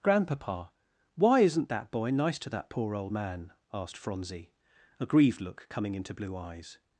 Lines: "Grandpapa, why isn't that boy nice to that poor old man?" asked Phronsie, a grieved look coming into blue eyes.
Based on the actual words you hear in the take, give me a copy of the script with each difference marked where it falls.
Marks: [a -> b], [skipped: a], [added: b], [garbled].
"Grandpapa, why isn't that boy nice to that poor old man?" asked Phronsie, a grieved look coming into blue eyes.